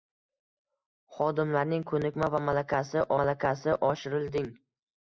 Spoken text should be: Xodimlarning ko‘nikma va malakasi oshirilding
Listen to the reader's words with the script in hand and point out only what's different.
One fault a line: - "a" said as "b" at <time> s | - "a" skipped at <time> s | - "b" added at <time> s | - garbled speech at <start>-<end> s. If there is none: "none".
- "malakasi" added at 3.2 s